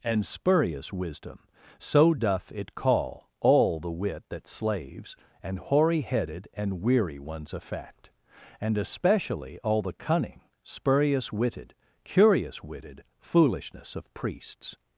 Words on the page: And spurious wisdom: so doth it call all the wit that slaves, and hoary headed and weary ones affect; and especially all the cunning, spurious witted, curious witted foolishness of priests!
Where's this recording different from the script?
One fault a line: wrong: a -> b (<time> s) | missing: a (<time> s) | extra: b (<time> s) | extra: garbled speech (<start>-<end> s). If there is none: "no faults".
no faults